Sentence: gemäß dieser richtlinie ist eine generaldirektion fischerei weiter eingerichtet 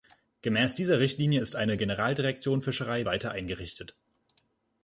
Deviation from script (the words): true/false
false